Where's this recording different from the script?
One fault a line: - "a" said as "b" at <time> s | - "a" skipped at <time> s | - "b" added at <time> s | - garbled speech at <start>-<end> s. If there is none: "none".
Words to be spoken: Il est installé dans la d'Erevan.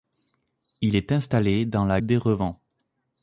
none